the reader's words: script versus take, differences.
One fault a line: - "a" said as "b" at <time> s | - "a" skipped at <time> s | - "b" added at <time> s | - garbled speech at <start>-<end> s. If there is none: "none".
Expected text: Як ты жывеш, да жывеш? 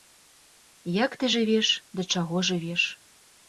- "чаго" added at 2.2 s